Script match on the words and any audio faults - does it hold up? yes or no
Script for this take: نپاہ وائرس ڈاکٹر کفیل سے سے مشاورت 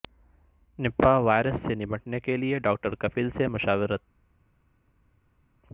no